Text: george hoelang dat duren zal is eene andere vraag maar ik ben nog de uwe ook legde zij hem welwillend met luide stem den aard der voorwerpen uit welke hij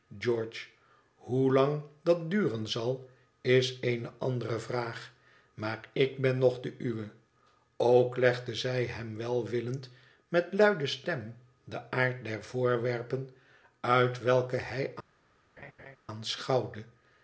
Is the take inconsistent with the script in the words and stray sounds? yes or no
yes